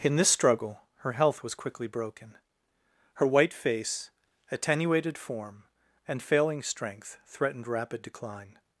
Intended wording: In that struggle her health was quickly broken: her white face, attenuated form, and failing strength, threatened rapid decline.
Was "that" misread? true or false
true